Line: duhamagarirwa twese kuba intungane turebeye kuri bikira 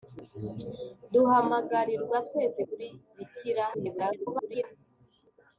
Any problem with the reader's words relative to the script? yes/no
yes